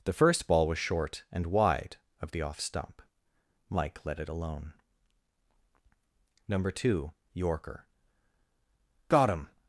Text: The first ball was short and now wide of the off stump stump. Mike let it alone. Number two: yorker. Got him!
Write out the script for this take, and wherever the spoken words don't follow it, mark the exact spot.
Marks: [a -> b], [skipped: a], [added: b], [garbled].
The first ball was short and [skipped: now] wide of the off stump [skipped: stump.] Mike let it alone. Number two: yorker. Got him!